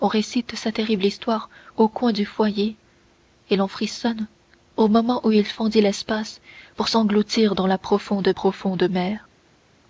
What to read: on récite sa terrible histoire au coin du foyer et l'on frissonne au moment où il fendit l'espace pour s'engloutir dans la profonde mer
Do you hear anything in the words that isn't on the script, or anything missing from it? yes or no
yes